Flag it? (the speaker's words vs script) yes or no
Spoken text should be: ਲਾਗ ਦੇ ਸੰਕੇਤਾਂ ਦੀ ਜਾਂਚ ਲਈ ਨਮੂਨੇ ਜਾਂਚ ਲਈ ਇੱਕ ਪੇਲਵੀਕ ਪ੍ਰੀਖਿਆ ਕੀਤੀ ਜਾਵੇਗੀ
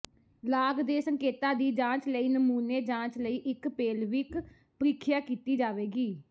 no